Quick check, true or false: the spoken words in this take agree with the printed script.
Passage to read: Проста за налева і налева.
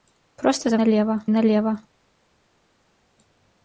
true